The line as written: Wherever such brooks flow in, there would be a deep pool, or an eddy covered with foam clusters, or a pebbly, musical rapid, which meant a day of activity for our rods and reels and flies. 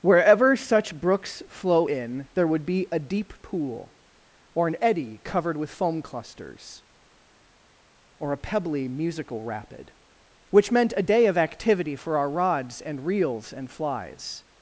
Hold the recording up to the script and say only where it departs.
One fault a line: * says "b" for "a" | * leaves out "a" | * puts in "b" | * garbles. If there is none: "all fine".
all fine